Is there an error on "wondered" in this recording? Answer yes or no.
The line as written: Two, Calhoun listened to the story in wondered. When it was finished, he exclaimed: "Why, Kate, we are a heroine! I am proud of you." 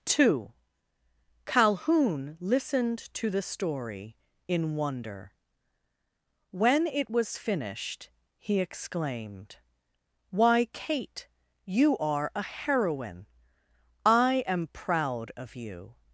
yes